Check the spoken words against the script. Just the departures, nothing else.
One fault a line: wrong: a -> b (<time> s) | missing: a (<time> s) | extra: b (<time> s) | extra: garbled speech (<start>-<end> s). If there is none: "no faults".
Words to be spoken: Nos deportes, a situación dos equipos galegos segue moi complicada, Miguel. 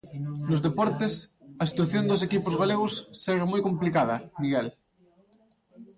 no faults